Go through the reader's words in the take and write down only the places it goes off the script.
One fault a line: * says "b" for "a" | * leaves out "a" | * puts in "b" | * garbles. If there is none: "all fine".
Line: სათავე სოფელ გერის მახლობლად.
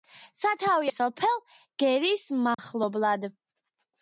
all fine